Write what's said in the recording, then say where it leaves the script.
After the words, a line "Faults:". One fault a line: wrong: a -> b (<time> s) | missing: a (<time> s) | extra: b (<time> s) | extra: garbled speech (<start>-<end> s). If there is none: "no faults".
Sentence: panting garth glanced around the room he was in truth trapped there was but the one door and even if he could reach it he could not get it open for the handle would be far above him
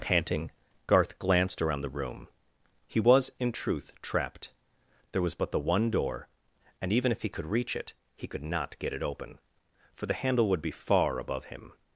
panting garth glanced around the room he was in truth trapped there was but the one door and even if he could reach it he could not get it open for the handle would be far above him
Faults:
no faults